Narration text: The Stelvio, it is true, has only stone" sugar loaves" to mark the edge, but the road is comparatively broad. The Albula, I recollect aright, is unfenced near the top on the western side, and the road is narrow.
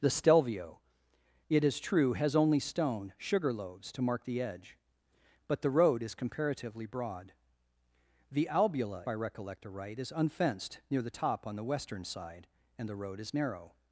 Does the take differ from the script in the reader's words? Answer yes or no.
no